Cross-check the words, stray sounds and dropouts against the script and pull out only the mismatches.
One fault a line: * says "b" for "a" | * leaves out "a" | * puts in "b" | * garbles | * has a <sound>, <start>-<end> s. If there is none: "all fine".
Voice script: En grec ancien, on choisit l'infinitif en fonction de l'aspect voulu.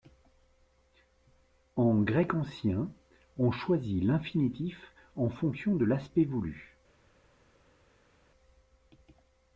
all fine